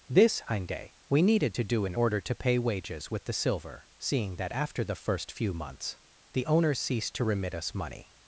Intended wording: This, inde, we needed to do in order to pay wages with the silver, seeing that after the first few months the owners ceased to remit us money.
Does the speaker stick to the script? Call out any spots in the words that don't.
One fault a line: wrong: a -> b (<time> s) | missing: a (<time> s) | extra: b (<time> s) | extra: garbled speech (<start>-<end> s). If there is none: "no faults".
no faults